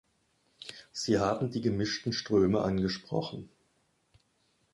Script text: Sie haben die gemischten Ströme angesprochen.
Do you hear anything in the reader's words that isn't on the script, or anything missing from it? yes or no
no